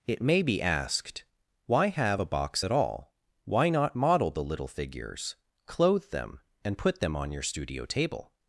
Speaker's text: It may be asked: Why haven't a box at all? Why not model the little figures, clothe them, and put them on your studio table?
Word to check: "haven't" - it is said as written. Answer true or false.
false